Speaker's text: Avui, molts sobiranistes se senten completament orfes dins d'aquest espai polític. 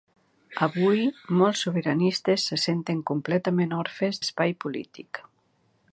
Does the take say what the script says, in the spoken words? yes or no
no